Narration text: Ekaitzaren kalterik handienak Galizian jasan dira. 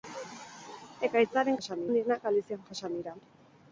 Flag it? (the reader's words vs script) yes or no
yes